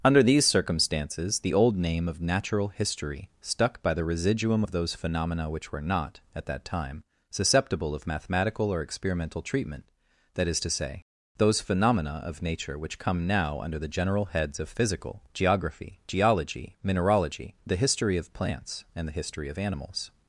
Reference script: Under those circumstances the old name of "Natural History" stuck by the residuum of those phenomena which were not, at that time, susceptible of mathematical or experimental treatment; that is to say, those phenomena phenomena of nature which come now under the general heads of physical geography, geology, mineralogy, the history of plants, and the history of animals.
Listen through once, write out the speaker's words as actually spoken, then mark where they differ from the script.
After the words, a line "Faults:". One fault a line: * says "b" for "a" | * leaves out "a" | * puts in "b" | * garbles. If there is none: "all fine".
Under these circumstances the old name of "Natural History" stuck by the residuum of those phenomena which were not, at that time, susceptible of mathematical or experimental treatment; that is to say, those phenomena of nature which come now under the general heads of physical geography, geology, mineralogy, the history of plants, and the history of animals.
Faults:
* says "these" for "those"
* leaves out "phenomena"